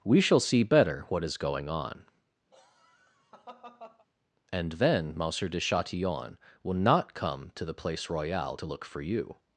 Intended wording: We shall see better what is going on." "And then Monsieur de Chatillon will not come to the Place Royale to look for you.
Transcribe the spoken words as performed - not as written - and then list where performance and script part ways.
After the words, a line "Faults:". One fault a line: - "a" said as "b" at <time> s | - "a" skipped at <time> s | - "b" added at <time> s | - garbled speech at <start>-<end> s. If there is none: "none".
We shall see better what is going on." "And then Monsieur de Chatillon will not come to the Place Royale to look for you.
Faults:
none